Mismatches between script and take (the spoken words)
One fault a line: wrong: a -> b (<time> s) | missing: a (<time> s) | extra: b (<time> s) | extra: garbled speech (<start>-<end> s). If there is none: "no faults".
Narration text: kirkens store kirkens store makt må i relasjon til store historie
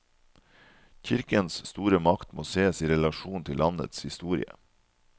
missing: kirkens store (2.0 s)
extra: sees (2.5 s)
wrong: store -> landets (3.6 s)